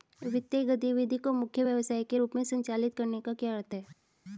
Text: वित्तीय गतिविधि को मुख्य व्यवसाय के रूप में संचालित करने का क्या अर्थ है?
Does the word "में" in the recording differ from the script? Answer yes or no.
no